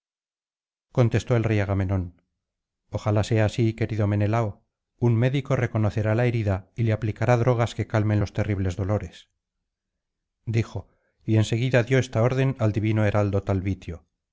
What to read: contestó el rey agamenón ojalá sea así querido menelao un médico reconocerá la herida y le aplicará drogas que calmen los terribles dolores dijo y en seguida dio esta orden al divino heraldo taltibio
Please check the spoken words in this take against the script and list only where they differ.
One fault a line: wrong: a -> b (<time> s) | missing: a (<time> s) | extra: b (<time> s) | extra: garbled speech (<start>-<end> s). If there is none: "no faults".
no faults